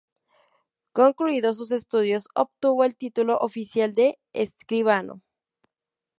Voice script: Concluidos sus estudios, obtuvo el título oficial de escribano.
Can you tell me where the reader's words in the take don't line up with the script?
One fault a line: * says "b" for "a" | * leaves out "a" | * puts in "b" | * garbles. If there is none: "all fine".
all fine